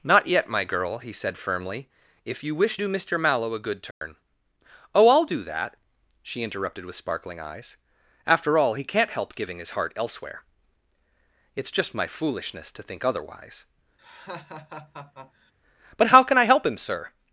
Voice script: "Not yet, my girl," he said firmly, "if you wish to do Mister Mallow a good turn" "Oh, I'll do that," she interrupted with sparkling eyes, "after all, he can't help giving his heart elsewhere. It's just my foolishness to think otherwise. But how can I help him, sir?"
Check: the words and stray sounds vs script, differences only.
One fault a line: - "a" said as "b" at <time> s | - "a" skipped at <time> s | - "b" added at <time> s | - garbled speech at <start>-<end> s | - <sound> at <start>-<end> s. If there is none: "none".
- "to" skipped at 2.8 s
- dropout at 3.9-4.0 s
- laugh at 14.0-15.5 s